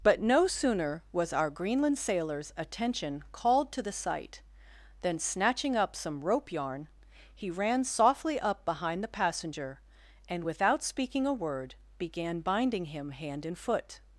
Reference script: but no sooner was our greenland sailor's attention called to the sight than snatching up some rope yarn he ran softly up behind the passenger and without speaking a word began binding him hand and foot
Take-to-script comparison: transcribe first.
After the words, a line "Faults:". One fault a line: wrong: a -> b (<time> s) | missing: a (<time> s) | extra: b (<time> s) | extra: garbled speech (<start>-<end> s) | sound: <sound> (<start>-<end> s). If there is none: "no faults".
but no sooner was our greenland sailor's attention called to the sight than snatching up some rope yarn he ran softly up behind the passenger and without speaking a word began binding him hand and foot
Faults:
no faults